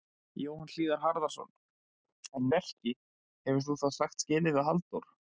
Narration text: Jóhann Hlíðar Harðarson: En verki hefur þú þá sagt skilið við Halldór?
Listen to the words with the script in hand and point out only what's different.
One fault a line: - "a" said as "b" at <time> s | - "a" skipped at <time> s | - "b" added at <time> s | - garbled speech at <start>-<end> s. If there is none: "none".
none